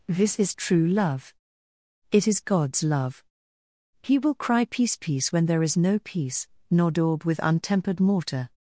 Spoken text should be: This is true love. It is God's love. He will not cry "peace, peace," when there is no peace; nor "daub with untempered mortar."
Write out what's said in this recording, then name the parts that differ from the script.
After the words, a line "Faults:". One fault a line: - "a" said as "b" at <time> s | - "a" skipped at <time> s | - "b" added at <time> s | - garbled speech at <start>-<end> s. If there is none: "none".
This is true love. It is God's love. He will cry "peace, peace," when there is no peace; nor "daub with untempered mortar."
Faults:
- "not" skipped at 4.3 s